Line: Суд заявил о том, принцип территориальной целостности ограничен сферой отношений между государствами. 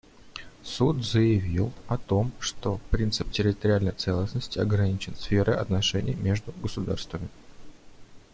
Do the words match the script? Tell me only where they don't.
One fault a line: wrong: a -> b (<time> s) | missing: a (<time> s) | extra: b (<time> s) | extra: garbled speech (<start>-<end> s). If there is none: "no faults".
extra: что (2.4 s)